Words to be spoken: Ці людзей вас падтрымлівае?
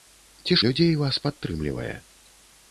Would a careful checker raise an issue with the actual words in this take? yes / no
no